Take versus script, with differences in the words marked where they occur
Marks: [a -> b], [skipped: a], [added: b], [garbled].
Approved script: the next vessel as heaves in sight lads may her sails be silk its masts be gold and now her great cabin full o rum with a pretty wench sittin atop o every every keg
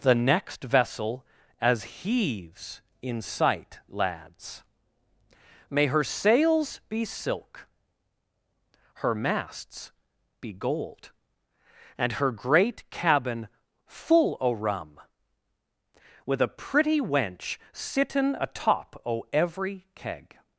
the next vessel as heaves in sight lads may her sails be silk [its -> her] masts be gold and [skipped: now] her great cabin full o rum with a pretty wench sittin atop o every [skipped: every] keg